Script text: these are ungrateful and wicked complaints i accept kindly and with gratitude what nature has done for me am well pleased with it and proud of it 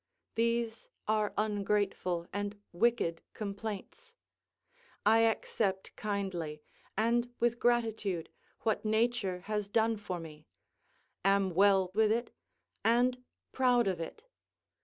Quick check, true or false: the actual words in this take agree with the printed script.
false